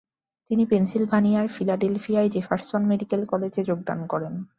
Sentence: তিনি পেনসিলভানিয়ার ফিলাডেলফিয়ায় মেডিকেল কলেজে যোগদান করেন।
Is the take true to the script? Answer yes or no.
no